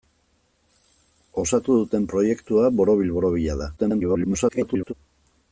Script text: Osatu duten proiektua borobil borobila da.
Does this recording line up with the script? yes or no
no